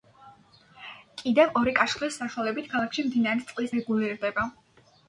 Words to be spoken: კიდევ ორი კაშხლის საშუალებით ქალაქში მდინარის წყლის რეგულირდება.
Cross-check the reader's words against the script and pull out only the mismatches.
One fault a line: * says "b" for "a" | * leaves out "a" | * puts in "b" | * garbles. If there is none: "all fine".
all fine